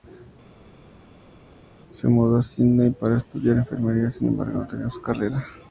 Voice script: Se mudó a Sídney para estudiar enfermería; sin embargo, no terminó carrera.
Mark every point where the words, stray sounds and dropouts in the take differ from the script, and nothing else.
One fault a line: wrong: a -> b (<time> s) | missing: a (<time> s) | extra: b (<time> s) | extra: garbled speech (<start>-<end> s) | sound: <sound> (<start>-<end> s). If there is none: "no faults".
extra: su (4.9 s)